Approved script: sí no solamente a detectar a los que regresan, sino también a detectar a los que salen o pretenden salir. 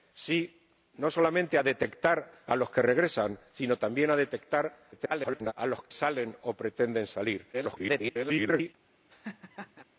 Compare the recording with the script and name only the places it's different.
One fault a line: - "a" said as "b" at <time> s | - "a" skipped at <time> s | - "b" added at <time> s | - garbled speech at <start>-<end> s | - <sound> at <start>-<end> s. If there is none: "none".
- garbled speech at 4.9-5.5 s
- "que" skipped at 5.8 s
- garbled speech at 7.5-8.7 s
- laugh at 9.1-9.8 s